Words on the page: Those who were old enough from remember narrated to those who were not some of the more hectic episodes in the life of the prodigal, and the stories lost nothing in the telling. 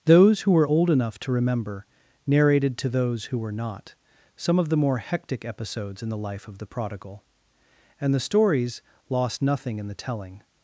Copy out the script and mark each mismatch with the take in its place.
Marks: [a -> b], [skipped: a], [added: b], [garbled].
Those who were old enough [from -> to] remember narrated to those who were not some of the more hectic episodes in the life of the prodigal, and the stories lost nothing in the telling.